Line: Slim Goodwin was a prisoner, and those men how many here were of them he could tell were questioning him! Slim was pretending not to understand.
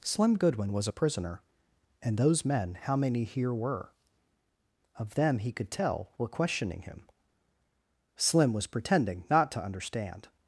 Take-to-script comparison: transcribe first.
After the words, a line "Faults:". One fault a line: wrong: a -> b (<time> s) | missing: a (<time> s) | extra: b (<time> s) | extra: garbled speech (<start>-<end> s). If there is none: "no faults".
Slim Goodwin was a prisoner, and those men how many here were of them he could tell were questioning him! Slim was pretending not to understand.
Faults:
no faults